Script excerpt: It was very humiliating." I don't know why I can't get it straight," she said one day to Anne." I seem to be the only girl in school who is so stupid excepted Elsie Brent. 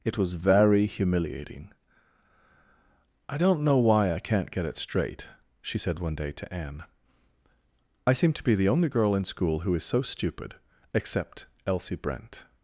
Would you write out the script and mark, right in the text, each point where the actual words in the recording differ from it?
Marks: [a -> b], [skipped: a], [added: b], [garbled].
It was very humiliating." I don't know why I can't get it straight," she said one day to Anne." I seem to be the only girl in school who is so stupid [excepted -> except] Elsie Brent.